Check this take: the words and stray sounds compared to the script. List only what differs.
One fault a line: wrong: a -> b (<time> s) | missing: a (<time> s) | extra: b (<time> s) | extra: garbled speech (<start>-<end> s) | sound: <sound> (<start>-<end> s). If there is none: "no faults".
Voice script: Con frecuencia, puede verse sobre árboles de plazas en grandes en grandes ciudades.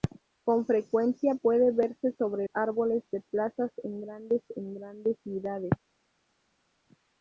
no faults